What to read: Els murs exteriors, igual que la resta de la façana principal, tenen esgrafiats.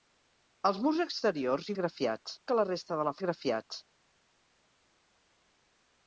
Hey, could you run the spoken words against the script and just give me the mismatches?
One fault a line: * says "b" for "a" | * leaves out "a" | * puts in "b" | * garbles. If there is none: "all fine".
* says "esgrafiats" for "igual"
* leaves out "façana principal tenen"